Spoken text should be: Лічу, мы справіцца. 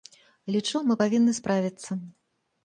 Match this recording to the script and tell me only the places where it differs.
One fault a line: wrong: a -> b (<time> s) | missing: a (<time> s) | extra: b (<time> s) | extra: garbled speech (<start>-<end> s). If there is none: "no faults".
extra: павінны (1.0 s)